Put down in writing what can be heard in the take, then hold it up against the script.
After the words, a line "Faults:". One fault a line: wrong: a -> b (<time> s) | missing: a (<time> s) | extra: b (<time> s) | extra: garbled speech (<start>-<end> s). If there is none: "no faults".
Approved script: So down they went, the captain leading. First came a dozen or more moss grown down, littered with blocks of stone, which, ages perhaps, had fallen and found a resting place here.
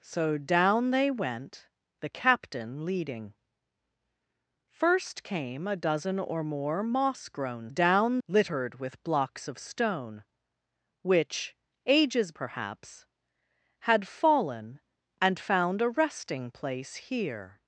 So down they went, the captain leading. First came a dozen or more moss grown down, littered with blocks of stone, which, ages perhaps, had fallen and found a resting place here.
Faults:
no faults